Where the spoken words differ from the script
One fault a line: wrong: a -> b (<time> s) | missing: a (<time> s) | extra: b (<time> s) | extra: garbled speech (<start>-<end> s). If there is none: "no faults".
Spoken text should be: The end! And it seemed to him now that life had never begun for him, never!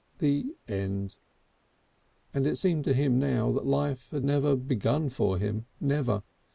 no faults